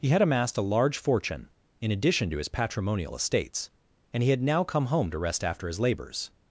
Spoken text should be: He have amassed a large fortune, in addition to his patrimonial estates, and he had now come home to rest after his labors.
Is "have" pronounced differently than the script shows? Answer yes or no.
yes